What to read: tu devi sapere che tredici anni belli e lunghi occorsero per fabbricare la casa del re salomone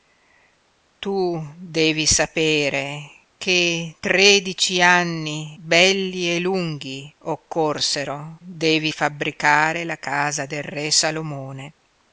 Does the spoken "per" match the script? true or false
false